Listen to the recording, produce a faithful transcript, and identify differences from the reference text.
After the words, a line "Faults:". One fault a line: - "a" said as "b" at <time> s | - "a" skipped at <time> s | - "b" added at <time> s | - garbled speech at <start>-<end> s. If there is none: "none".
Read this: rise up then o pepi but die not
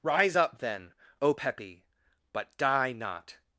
rise up then o pepi but die not
Faults:
none